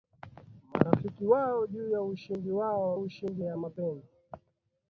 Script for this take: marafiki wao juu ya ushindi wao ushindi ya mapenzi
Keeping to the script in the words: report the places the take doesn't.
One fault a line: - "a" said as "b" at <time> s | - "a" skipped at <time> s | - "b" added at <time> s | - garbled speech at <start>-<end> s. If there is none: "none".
none